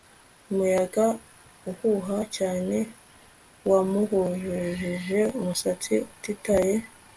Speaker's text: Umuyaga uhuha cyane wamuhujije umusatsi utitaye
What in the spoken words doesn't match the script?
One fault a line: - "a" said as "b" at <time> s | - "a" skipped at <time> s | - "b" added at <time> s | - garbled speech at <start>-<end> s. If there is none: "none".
none